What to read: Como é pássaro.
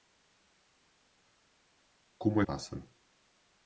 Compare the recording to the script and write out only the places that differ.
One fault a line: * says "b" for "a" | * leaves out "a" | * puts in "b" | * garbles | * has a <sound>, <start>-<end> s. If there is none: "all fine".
all fine